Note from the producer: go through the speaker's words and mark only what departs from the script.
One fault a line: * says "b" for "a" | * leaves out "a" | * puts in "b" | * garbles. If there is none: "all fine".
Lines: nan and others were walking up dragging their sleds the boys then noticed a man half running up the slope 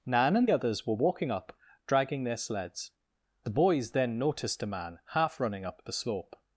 all fine